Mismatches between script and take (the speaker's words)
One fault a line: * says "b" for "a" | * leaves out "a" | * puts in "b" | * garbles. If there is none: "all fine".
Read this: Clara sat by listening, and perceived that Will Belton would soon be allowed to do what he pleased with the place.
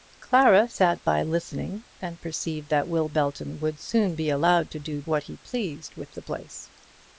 all fine